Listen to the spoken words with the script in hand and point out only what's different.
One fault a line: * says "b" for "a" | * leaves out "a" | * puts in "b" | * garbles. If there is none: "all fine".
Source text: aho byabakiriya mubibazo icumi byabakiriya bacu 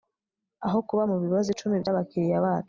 * says "kuba" for "byabakiriya"